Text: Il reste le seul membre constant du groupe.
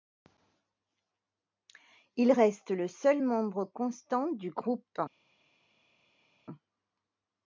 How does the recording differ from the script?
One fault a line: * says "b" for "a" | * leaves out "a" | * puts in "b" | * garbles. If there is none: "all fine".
all fine